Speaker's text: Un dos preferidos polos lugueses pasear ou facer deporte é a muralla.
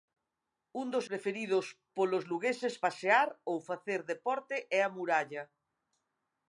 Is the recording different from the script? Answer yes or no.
no